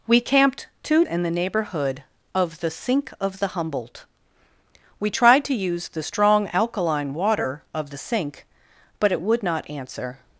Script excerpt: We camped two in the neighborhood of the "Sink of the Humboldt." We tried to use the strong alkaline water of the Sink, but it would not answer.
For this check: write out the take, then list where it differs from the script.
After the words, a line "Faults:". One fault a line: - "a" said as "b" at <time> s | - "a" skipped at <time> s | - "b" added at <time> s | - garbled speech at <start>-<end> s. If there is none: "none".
We camped two in the neighborhood of the "Sink of the Humboldt." We tried to use the strong alkaline water of the Sink, but it would not answer.
Faults:
none